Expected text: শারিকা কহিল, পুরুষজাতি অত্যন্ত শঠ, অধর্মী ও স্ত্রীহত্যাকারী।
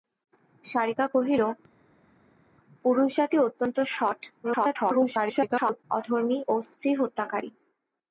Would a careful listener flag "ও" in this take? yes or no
no